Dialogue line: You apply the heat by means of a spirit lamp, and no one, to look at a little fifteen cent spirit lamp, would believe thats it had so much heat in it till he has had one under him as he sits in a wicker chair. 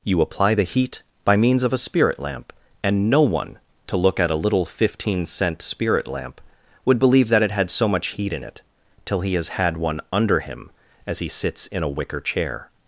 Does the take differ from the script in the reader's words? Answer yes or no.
yes